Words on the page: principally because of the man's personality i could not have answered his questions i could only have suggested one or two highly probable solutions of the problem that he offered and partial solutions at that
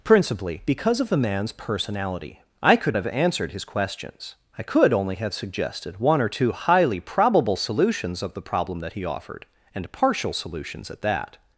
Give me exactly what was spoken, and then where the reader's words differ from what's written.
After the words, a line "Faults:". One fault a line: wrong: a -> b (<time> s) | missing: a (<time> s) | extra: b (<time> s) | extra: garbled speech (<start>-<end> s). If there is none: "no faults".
principally because of the man's personality i could have answered his questions i could only have suggested one or two highly probable solutions of the problem that he offered and partial solutions at that
Faults:
missing: not (3.0 s)